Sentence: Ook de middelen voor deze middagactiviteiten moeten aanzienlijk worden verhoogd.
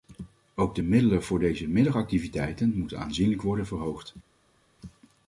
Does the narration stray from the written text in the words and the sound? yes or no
no